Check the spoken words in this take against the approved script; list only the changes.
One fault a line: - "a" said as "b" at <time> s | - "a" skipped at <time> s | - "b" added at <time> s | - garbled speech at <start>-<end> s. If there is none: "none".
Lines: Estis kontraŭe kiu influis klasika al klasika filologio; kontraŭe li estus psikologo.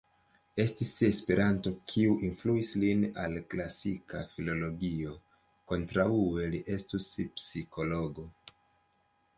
- "kontraŭe" said as "esperanto" at 1.1 s
- "klasika" said as "lin" at 2.9 s